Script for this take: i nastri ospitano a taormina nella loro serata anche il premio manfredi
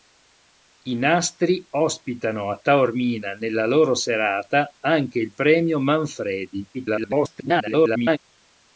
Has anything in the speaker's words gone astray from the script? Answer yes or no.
yes